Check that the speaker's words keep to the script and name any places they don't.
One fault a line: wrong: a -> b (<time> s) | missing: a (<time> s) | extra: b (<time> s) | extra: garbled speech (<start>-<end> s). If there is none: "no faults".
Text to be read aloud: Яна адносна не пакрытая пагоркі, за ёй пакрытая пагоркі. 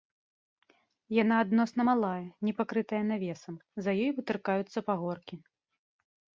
extra: малая (1.9 s)
wrong: пагоркі -> навесам (3.1 s)
wrong: пакрытая -> вытыркаюцца (4.2 s)